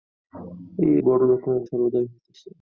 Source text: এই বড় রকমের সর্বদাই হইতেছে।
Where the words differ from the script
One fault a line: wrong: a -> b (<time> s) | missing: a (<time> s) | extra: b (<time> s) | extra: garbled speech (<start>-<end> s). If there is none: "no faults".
no faults